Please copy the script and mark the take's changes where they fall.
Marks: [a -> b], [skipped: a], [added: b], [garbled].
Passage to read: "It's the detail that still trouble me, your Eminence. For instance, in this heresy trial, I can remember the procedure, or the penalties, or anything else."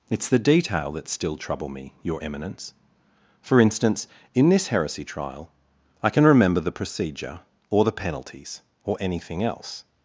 "It's the detail that still trouble me, your Eminence. For instance, in this heresy trial, I can remember the procedure, or the penalties, or anything else."